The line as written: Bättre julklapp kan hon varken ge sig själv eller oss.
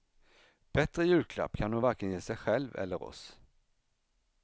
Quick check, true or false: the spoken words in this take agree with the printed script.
true